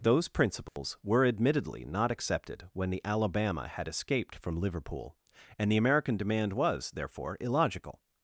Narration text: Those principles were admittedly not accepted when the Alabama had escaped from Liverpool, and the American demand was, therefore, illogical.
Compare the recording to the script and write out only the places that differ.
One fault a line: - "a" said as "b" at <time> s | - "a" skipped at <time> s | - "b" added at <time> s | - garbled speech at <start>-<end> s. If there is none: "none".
none